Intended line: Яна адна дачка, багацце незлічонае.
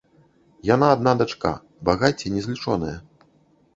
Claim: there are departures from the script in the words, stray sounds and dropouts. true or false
false